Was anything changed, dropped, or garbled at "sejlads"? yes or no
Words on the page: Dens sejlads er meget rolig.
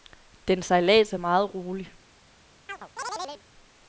no